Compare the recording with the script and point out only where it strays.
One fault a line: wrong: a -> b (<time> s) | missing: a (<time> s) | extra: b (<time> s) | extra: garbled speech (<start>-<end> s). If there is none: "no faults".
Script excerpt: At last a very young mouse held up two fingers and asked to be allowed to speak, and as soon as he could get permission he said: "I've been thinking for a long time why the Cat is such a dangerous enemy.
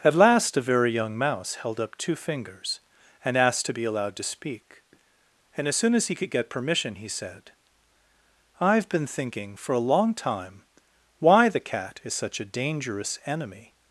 no faults